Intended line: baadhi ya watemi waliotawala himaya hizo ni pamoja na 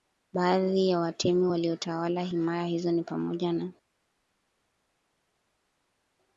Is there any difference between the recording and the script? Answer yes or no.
no